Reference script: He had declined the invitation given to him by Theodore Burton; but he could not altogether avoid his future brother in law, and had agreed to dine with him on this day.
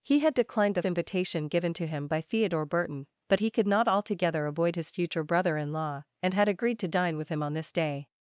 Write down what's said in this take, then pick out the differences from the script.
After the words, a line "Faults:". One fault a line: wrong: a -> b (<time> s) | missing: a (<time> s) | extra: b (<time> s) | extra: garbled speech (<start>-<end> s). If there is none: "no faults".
He had declined the invitation given to him by Theodore Burton; but he could not altogether avoid his future brother in law, and had agreed to dine with him on this day.
Faults:
no faults